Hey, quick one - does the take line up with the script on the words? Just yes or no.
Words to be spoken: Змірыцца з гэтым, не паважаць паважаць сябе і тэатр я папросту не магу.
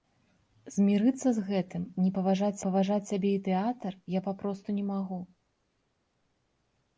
yes